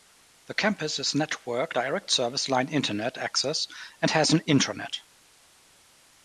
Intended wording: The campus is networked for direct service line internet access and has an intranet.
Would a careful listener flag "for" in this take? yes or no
yes